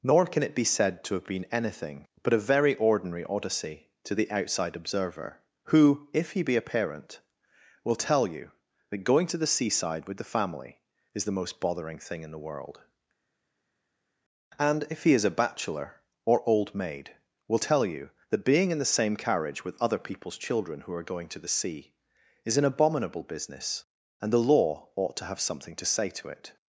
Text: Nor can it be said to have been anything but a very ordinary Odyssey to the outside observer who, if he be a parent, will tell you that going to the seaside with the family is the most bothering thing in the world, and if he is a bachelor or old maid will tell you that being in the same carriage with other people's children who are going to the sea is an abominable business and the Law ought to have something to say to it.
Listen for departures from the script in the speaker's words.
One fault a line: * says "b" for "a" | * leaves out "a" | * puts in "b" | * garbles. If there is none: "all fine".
all fine